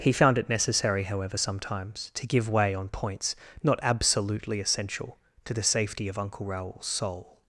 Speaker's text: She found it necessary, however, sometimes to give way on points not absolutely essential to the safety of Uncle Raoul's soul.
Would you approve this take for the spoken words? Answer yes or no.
no